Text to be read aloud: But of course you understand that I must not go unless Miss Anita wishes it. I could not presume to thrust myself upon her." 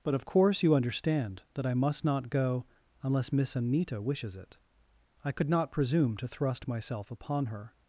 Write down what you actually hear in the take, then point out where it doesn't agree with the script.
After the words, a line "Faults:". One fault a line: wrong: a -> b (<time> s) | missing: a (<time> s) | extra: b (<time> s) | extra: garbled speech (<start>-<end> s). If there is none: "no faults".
But of course you understand that I must not go unless Miss Anita wishes it. I could not presume to thrust myself upon her."
Faults:
no faults